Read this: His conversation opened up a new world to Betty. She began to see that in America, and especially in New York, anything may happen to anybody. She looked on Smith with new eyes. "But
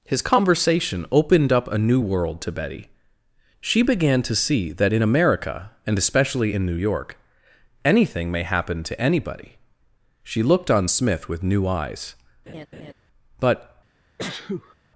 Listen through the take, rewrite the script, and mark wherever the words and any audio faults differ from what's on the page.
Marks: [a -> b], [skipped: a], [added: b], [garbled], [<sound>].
His conversation opened up a new world to Betty. She began to see that in America, and especially in New York, anything may happen to anybody. She looked on Smith with new eyes. [laugh] "But [sneeze]